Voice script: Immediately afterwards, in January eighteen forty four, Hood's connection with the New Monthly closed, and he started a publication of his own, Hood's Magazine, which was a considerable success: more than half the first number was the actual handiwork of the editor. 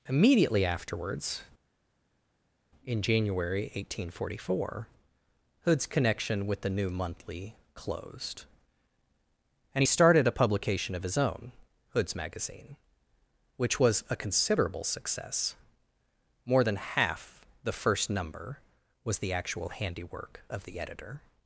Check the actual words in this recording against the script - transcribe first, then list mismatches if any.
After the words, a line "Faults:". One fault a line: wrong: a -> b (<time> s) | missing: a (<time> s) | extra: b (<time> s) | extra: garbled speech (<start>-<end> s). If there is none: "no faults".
Immediately afterwards, in January eighteen forty four, Hood's connection with the New Monthly closed, and he started a publication of his own, Hood's Magazine, which was a considerable success: more than half the first number was the actual handiwork of the editor.
Faults:
no faults